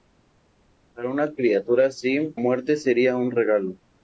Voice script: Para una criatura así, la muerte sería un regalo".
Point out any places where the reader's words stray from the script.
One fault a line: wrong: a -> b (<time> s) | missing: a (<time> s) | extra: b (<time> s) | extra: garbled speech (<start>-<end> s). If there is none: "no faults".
missing: la (2.4 s)